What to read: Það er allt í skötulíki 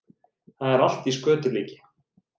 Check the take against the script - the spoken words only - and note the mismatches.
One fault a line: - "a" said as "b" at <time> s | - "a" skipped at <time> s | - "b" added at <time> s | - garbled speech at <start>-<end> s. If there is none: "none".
none